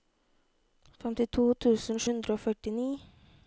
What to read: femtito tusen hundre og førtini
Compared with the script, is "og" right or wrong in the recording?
right